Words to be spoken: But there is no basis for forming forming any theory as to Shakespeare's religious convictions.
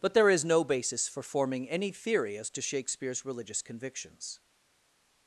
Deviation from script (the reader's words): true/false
true